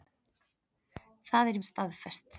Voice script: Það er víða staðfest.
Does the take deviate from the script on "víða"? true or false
true